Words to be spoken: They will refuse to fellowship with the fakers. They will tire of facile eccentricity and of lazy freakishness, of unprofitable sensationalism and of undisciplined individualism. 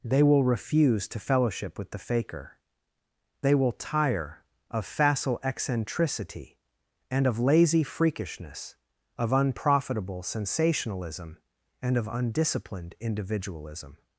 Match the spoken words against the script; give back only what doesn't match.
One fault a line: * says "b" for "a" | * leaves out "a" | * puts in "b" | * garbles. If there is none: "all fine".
* says "faker" for "fakers"